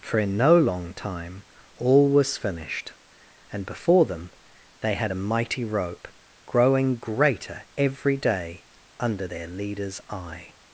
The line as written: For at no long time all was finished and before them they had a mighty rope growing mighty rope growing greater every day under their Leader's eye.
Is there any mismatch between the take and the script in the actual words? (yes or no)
yes